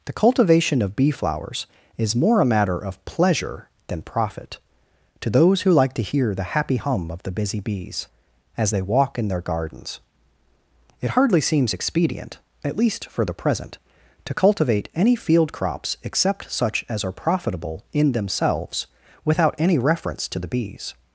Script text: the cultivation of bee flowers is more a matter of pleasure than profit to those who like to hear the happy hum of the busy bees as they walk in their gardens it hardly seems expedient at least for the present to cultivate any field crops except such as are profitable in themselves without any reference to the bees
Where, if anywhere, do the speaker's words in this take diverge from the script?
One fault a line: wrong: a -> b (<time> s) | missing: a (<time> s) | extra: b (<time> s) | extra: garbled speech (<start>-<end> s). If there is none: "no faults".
no faults